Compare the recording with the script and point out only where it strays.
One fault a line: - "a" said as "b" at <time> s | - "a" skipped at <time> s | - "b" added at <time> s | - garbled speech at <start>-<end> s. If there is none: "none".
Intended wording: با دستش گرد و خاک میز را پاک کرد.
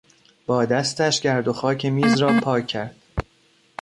none